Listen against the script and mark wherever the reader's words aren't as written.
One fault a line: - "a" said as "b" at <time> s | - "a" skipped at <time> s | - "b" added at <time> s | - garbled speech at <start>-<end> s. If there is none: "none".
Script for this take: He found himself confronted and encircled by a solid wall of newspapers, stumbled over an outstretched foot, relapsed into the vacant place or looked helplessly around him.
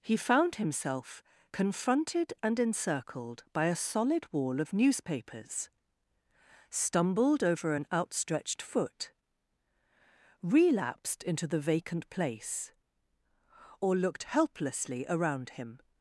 none